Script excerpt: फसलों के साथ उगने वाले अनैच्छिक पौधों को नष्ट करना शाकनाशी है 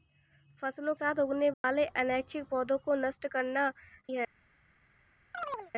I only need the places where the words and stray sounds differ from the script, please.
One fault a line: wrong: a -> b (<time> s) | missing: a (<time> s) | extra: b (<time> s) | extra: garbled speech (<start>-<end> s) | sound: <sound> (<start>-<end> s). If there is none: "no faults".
missing: के (0.9 s)
sound: dropout (1.5-1.6 s)
missing: शाकनाशी (3.7 s)
sound: chirp (5.3-5.7 s)